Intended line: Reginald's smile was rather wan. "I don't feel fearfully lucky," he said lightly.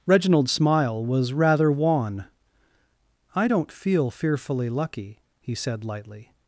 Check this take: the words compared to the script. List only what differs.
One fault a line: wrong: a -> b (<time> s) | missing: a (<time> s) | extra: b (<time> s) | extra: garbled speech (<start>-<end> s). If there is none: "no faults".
no faults